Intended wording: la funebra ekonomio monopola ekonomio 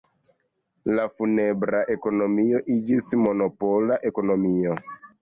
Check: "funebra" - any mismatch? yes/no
no